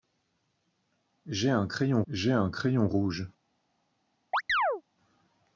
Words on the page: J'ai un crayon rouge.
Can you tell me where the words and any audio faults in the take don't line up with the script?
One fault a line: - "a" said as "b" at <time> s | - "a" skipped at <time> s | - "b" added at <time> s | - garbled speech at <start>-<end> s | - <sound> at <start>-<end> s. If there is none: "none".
- "j'ai un crayon" added at 2.1 s
- chirp at 4.3-4.8 s